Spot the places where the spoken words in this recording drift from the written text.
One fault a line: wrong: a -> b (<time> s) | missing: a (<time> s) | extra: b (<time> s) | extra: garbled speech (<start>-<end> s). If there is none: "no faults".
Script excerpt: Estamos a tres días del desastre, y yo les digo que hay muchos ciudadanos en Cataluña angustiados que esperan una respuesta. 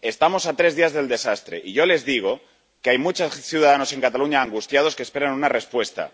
no faults